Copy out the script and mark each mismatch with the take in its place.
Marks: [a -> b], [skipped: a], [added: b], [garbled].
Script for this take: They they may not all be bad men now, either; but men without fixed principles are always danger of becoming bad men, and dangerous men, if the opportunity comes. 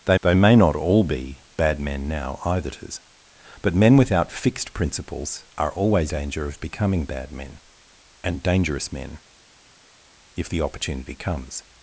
They they may not all be bad men now, either; but men without fixed principles are always danger of becoming bad men, and dangerous men, if the opportunity comes.